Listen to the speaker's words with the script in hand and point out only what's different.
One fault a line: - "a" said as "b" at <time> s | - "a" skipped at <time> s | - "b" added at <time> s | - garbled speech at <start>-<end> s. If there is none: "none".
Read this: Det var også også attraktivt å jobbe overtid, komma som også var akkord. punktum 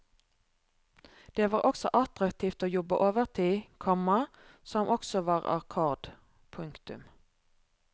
- "også" skipped at 1.9 s